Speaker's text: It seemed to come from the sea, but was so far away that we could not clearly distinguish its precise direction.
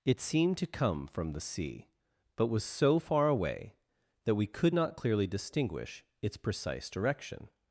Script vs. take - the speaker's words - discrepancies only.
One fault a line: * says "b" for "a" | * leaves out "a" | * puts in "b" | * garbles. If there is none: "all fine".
all fine